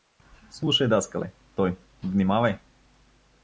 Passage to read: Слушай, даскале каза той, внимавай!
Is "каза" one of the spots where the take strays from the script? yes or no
yes